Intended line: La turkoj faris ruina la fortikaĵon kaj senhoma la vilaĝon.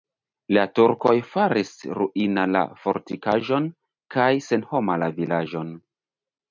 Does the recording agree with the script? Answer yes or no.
yes